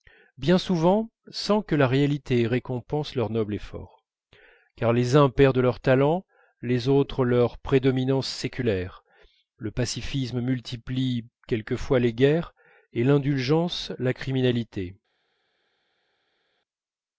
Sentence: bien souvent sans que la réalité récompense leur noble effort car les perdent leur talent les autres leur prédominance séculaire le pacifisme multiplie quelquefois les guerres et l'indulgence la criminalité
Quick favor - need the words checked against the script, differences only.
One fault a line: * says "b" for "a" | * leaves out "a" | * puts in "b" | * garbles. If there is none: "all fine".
* puts in "uns"